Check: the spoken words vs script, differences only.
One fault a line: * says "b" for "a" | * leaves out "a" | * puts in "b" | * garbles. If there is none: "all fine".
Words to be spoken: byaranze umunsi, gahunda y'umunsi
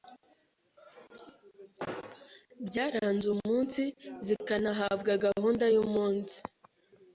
* puts in "zikanahabwa"